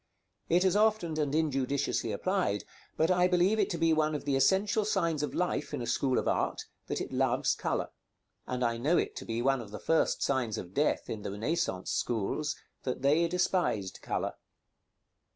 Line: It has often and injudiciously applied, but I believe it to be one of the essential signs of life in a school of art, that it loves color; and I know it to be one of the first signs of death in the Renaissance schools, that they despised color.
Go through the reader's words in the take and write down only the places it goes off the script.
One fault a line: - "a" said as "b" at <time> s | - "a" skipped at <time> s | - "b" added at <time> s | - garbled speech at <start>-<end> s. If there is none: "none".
none